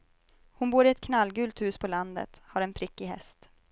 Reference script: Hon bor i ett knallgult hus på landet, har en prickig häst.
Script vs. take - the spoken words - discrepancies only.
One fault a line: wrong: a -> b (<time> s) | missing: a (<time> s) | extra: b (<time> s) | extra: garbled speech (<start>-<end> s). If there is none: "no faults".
no faults